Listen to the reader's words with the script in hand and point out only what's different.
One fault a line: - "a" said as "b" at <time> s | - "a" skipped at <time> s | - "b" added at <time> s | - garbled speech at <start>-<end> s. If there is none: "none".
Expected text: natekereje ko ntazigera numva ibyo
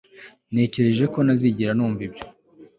none